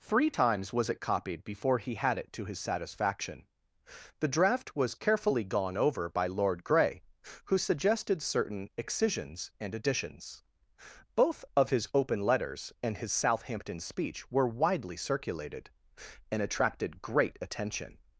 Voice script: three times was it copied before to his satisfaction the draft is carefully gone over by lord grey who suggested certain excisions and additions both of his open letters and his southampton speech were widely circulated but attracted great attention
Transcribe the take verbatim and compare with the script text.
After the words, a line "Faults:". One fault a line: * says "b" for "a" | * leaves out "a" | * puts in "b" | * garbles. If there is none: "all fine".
three times was it copied before he had it to his satisfaction the draft was carefully gone over by lord grey who suggested certain excisions and additions both of his open letters and his southampton speech were widely circulated and attracted great attention
Faults:
* puts in "he had it"
* says "was" for "is"
* says "and" for "but"